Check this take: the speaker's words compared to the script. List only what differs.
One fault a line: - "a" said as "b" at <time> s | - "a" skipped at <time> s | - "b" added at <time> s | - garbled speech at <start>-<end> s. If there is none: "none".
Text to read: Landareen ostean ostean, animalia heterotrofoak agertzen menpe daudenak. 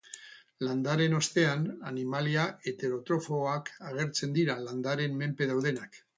- "ostean" skipped at 1.7 s
- "dira landareen" added at 4.4 s